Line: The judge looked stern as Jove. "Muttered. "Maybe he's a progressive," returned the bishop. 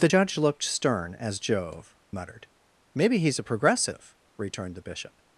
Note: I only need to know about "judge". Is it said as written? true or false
true